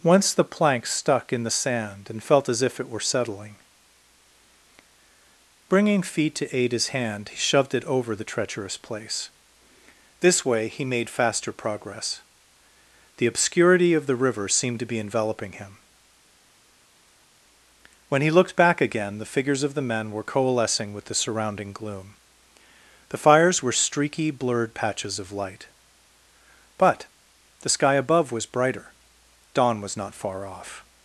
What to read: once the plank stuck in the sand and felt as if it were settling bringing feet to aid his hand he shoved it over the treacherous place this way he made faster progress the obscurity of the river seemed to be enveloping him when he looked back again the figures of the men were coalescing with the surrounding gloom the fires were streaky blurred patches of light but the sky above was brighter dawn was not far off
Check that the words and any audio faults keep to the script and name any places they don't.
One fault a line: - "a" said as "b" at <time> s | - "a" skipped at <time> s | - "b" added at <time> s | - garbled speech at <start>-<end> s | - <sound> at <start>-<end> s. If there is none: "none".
none